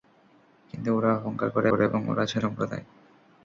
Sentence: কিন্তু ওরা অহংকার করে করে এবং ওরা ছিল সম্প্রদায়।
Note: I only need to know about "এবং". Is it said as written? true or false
true